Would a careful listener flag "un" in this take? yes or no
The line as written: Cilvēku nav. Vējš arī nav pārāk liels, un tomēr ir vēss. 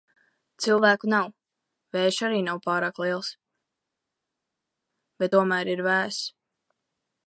yes